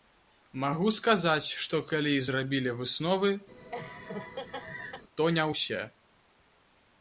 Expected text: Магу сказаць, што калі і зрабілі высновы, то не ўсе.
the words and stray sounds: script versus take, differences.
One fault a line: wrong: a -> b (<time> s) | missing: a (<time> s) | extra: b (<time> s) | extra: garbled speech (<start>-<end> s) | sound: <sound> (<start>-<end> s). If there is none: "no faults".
sound: laugh (3.5-5.0 s)